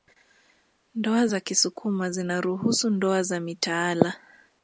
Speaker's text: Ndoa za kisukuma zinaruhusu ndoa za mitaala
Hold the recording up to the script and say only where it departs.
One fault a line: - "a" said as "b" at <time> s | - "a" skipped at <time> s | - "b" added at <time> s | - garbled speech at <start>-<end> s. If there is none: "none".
none